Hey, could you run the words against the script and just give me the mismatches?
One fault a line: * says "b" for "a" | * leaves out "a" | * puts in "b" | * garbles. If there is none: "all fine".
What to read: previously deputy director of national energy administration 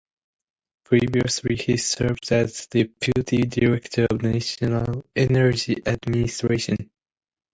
* puts in "he served as"